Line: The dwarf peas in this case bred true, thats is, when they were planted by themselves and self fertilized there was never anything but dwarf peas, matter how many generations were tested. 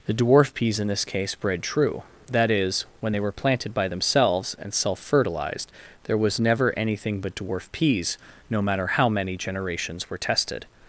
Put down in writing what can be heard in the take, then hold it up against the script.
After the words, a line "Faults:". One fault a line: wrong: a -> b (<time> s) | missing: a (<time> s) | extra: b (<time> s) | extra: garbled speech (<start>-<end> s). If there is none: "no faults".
The dwarf peas in this case bred true, that is, when they were planted by themselves and self fertilized there was never anything but dwarf peas, no matter how many generations were tested.
Faults:
wrong: thats -> that (2.3 s)
extra: no (8.5 s)